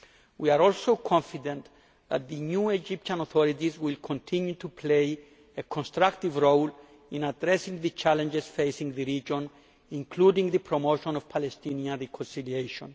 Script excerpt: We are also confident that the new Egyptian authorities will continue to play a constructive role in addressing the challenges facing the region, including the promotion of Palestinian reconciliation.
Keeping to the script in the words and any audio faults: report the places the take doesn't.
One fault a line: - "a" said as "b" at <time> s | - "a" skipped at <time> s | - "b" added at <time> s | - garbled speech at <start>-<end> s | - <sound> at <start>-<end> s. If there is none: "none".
none